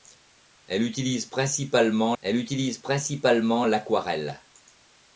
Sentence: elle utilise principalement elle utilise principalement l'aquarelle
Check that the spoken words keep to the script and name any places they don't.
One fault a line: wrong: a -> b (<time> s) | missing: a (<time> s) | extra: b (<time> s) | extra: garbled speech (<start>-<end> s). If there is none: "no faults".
no faults